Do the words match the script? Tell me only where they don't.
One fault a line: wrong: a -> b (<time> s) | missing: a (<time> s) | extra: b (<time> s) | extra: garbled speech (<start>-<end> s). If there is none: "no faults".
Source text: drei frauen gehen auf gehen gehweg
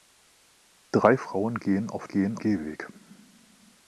no faults